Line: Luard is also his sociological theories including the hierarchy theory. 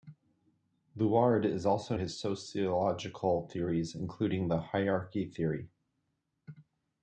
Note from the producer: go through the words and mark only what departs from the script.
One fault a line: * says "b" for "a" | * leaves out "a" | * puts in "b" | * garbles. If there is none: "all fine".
all fine